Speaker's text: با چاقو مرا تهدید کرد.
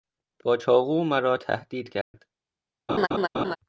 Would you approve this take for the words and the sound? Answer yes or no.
no